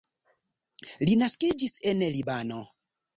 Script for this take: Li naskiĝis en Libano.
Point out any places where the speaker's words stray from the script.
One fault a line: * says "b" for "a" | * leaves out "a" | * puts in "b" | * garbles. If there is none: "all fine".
all fine